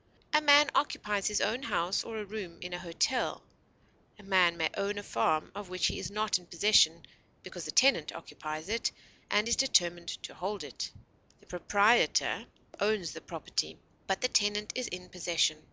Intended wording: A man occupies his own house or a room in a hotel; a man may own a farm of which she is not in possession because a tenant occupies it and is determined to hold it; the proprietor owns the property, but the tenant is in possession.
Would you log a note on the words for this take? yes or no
yes